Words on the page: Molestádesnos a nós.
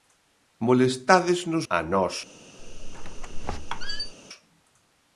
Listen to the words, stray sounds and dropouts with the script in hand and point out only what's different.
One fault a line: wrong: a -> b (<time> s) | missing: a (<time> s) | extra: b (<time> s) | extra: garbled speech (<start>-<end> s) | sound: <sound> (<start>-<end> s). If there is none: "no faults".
sound: squeak (2.6-4.1 s)